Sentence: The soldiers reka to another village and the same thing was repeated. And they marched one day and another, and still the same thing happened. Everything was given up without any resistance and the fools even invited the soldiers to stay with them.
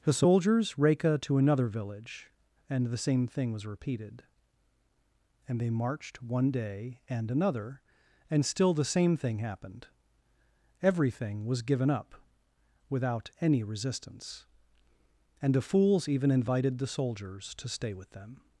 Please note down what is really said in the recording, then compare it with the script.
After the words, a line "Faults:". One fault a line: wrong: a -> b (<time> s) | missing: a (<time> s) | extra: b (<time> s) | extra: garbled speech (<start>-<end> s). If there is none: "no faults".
The soldiers reka to another village and the same thing was repeated. And they marched one day and another, and still the same thing happened. Everything was given up without any resistance and the fools even invited the soldiers to stay with them.
Faults:
no faults